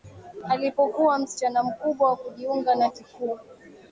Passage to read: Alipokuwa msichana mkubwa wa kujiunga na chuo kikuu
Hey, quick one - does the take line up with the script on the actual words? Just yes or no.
no